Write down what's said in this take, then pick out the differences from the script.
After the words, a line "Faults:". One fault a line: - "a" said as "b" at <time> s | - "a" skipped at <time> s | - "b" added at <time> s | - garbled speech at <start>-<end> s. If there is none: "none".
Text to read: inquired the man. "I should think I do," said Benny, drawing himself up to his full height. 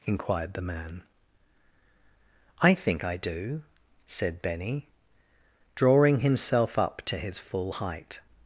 inquired the man. "I think I do," said Benny, drawing himself up to his full height.
Faults:
- "should" skipped at 2.7 s